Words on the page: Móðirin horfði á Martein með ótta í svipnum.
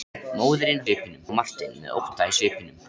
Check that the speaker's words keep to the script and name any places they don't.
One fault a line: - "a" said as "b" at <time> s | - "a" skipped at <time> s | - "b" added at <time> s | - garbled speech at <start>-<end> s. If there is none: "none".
- "horfði" said as "svipnum" at 0.9 s